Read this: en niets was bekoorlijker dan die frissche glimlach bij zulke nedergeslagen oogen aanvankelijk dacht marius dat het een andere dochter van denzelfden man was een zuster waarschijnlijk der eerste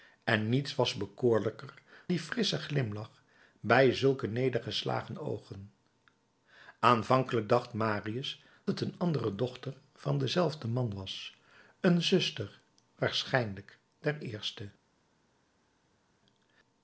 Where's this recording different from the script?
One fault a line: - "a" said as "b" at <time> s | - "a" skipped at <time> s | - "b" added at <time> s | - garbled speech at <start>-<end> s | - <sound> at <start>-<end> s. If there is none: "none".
- "dan" skipped at 1.7 s
- "dat" skipped at 8.4 s